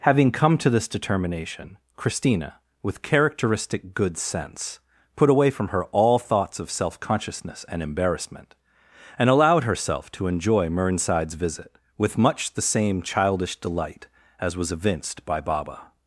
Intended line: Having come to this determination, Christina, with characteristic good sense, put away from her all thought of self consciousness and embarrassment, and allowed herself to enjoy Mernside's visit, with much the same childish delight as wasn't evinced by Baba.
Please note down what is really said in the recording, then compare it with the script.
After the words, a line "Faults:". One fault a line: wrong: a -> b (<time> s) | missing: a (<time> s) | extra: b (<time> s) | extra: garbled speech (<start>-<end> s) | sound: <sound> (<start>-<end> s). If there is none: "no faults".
Having come to this determination, Christina, with characteristic good sense, put away from her all thoughts of self consciousness and embarrassment, and allowed herself to enjoy Mernside's visit, with much the same childish delight as was evinced by Baba.
Faults:
wrong: thought -> thoughts (6.2 s)
wrong: wasn't -> was (14.6 s)